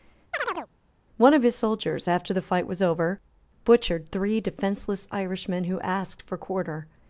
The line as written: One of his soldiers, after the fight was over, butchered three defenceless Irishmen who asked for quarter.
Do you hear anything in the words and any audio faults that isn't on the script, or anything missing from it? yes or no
yes